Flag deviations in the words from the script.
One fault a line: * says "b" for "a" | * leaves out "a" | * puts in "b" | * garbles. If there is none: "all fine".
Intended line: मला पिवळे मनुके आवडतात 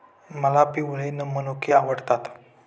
all fine